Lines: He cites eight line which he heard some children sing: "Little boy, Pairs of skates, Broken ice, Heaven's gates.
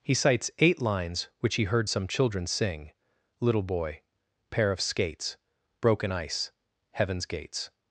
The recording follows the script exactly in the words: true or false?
false